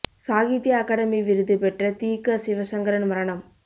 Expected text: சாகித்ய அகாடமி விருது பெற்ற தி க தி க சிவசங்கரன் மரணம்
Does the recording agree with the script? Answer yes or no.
no